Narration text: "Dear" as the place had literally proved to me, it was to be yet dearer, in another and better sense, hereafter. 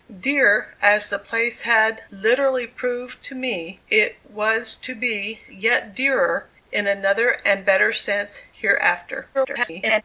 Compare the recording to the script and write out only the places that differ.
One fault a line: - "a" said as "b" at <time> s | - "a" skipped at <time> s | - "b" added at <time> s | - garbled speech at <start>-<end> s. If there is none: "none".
- garbled speech at 9.3-10.0 s